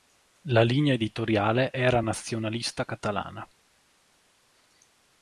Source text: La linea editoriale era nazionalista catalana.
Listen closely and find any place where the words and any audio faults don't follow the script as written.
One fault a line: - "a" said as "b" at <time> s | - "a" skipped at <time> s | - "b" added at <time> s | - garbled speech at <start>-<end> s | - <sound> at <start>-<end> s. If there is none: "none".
none